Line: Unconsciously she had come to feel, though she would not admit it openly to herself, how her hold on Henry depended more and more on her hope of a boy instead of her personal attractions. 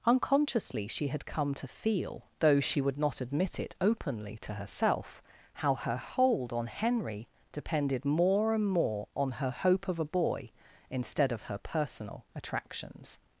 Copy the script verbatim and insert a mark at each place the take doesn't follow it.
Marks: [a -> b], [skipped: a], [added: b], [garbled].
Unconsciously she had come to feel, though she would not admit it openly to herself, how her hold on Henry depended more and more on her hope of a boy instead of her personal attractions.